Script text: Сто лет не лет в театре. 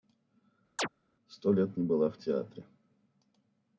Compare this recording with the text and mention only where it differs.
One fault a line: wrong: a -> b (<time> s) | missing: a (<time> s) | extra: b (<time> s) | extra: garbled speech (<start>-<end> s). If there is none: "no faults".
wrong: лет -> была (1.8 s)